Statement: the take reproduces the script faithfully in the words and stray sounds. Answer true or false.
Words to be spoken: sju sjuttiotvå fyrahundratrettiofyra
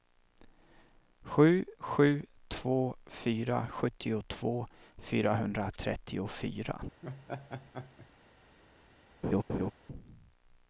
false